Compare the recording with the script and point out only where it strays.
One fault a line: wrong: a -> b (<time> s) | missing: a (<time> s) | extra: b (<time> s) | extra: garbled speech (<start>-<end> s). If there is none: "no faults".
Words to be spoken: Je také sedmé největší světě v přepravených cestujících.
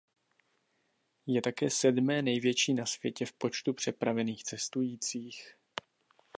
extra: na (2.7 s)
extra: počtu (3.3 s)